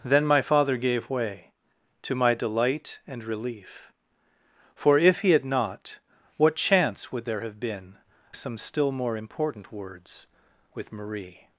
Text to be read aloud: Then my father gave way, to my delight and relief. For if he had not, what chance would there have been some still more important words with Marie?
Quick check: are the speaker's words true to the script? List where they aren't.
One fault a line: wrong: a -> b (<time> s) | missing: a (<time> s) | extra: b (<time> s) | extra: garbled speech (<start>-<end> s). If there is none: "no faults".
no faults